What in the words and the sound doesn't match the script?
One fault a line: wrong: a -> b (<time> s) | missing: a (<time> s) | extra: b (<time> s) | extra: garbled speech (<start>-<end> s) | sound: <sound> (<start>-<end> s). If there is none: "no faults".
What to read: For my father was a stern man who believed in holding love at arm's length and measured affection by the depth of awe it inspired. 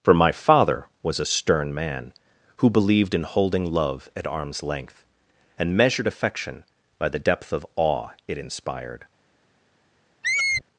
sound: squeak (10.2-10.6 s)